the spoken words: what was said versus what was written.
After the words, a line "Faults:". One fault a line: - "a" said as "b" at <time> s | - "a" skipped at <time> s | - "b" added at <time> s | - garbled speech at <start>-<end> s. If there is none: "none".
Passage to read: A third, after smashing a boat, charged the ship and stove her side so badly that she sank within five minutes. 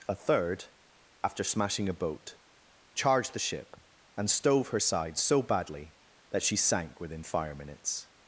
A third, after smashing a boat, charged the ship and stove her side so badly that she sank within fire minutes.
Faults:
- "five" said as "fire" at 7.2 s